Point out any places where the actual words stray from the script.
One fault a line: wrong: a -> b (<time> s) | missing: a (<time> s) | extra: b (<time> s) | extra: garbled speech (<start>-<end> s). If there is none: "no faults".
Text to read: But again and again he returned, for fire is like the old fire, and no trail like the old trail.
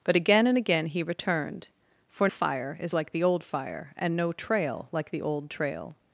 no faults